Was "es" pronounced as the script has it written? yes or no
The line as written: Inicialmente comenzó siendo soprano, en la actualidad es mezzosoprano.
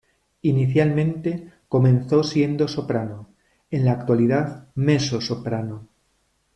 no